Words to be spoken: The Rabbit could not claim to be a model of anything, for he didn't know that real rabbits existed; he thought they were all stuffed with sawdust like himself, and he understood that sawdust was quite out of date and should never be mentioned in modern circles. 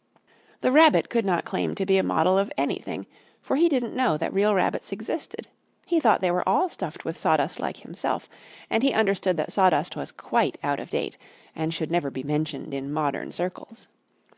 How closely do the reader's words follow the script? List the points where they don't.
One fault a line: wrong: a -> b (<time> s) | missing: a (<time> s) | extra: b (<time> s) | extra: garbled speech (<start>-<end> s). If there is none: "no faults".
no faults